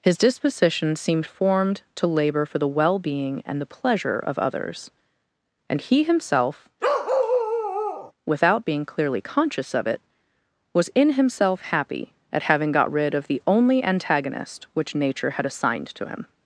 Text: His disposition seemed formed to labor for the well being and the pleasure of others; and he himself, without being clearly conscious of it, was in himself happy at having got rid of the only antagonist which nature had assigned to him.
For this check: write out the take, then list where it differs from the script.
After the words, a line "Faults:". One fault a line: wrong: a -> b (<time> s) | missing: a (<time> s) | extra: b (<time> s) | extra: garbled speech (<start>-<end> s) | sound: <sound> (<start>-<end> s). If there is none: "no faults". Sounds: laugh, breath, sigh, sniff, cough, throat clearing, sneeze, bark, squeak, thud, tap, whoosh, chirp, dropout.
His disposition seemed formed to labor for the well being and the pleasure of others; and he himself, without being clearly conscious of it, was in himself happy at having got rid of the only antagonist which nature had assigned to him.
Faults:
sound: bark (6.8-8.1 s)